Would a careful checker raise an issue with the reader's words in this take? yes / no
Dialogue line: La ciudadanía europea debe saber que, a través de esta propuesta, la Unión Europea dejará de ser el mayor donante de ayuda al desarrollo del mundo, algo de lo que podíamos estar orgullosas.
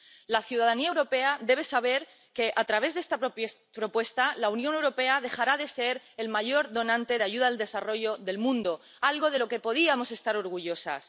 no